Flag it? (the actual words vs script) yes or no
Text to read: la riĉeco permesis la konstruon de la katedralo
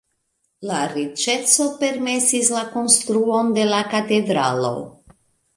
no